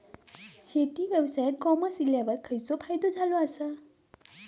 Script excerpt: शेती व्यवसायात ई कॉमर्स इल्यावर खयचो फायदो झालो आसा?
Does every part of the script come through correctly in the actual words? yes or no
no